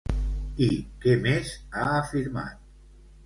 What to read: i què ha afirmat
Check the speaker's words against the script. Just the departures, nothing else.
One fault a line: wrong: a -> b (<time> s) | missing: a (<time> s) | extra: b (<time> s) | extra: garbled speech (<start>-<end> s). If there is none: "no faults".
extra: més (1.3 s)